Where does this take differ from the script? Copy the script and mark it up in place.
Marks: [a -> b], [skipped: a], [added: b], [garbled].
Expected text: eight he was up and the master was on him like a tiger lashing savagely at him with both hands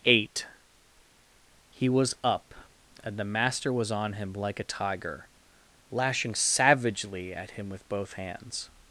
eight he was up and the master was on him like a tiger lashing savagely at him with both hands